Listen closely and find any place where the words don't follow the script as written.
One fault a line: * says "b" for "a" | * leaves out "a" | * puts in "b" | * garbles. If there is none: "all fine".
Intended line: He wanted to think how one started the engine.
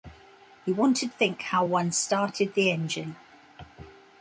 * leaves out "to"